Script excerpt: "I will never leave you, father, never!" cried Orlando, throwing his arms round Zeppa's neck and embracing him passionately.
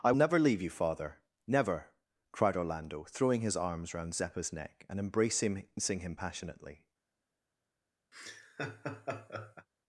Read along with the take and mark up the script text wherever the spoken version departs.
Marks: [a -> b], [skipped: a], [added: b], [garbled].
"I [skipped: will] never leave you, father, never!" cried Orlando, throwing his arms round Zeppa's neck and embracing him passionately.